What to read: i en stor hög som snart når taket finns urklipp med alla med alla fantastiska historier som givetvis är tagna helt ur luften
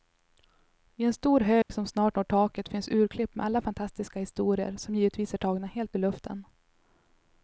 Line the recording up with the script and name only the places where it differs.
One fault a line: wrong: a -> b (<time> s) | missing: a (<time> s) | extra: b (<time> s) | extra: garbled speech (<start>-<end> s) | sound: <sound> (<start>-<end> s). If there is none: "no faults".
sound: dropout (1.6-1.7 s)
missing: med alla (3.6 s)